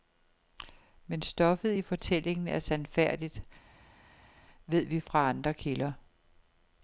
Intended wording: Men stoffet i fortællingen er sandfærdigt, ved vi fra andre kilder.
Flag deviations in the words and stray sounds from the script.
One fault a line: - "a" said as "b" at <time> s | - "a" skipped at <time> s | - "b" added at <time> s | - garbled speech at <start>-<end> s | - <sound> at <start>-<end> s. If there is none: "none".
none